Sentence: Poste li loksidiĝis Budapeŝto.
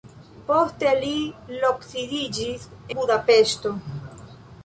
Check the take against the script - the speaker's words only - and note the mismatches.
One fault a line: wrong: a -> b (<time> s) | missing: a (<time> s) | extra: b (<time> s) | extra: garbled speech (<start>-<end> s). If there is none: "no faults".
no faults